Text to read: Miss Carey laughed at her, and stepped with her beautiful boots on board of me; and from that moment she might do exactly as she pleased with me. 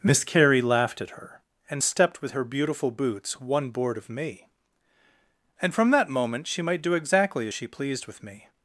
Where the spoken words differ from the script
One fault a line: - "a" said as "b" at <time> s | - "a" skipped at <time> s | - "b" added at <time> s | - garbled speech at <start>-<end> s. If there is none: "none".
- "on" said as "one" at 3.4 s